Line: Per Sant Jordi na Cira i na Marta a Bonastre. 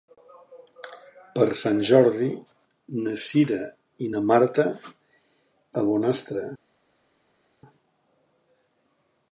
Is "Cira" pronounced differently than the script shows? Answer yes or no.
no